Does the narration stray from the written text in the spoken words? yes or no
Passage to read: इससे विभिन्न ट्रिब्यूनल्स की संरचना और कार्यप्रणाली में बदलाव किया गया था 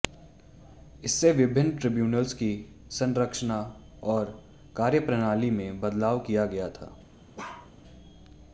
no